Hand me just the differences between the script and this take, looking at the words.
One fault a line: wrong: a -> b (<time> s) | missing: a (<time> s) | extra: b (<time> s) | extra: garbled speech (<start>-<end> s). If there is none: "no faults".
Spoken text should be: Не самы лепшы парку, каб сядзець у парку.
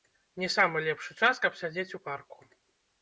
wrong: парку -> час (1.2 s)